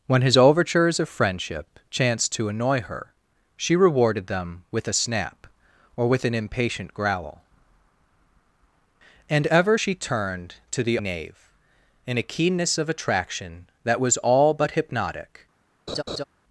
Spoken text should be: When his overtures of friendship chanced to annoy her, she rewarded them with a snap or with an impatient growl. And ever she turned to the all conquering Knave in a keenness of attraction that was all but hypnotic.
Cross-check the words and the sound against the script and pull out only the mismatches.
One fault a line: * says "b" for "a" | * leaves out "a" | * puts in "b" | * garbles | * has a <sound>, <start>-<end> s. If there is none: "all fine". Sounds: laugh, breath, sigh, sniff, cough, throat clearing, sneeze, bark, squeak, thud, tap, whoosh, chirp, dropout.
* leaves out "all conquering"
* has a laugh, 15.9-16.2 s